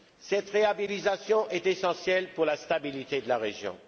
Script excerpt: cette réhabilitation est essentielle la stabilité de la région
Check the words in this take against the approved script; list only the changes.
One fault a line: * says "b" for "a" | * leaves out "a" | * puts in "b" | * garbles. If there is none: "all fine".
* puts in "pour"